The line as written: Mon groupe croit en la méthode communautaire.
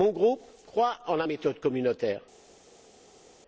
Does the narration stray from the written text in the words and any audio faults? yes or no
no